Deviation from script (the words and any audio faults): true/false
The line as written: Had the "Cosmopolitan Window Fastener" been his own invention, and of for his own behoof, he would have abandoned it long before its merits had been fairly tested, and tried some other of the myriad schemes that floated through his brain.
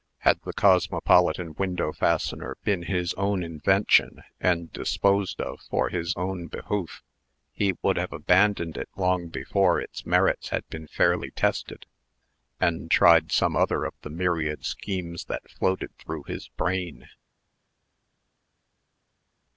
true